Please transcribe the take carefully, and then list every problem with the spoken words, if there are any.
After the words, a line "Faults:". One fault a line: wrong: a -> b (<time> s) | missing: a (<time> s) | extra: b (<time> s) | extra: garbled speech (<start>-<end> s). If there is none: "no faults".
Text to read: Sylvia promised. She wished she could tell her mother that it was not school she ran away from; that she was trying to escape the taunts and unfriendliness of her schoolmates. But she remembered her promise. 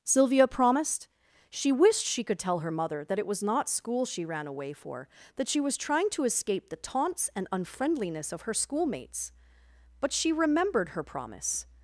Sylvia promised. She wished she could tell her mother that it was not school she ran away for; that she was trying to escape the taunts and unfriendliness of her schoolmates. But she remembered her promise.
Faults:
wrong: from -> for (4.7 s)